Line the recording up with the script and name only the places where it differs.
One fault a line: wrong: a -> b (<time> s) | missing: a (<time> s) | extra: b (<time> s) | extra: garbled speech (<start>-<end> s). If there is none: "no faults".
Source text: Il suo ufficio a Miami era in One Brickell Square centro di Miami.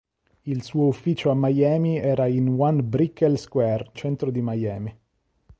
no faults